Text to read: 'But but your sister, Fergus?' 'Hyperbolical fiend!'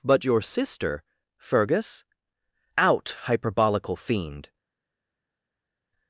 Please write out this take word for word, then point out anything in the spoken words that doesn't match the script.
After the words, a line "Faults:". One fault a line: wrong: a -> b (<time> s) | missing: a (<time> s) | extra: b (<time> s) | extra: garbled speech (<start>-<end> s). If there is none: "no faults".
'But your sister, Fergus?' 'Out, hyperbolical fiend!'
Faults:
missing: but (0.2 s)
extra: Out (2.8 s)